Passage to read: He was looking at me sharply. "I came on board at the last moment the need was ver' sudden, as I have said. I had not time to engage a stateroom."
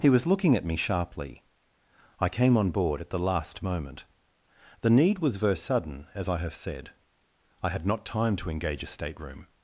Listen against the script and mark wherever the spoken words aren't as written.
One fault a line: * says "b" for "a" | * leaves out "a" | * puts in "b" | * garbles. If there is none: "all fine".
all fine